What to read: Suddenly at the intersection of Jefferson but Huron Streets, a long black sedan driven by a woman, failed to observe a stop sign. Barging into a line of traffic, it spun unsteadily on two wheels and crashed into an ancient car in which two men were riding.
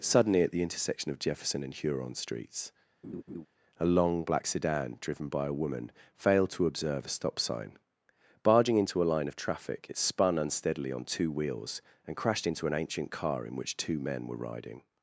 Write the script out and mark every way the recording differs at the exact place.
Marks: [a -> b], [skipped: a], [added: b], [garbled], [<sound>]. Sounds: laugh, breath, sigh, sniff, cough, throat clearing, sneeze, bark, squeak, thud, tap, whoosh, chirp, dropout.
Suddenly at the intersection of Jefferson [but -> and] Huron Streets, [laugh] a long black sedan driven by a woman, failed to observe a stop sign. Barging into a line of traffic, it spun unsteadily on two wheels and crashed into an ancient car in which two men were riding.